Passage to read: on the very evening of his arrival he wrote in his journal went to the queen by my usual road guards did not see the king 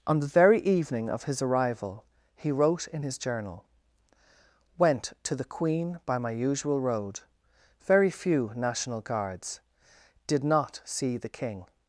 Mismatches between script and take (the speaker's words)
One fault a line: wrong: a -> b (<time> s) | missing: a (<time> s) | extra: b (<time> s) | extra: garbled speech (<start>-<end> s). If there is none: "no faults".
extra: very few national (7.8 s)